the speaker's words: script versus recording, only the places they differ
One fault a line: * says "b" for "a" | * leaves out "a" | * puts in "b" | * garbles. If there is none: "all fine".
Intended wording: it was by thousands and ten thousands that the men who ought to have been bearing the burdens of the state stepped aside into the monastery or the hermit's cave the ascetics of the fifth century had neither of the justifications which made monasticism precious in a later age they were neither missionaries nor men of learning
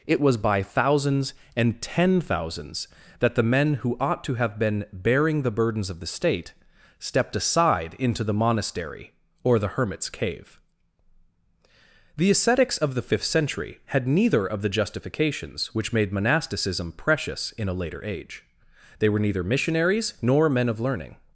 all fine